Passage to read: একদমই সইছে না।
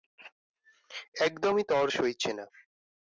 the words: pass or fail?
fail